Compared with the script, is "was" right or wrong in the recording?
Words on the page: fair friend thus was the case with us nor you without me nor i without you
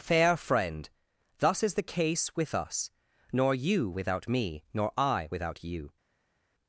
wrong